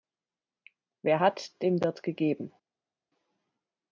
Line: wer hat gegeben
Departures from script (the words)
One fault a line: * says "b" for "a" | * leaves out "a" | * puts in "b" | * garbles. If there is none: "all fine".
* puts in "dem wird"